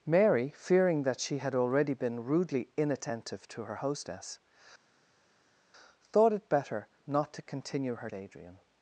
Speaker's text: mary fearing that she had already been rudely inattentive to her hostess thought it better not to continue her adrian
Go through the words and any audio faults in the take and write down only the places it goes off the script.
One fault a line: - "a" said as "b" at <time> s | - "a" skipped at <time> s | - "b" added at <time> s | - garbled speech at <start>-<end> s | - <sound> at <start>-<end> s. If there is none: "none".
none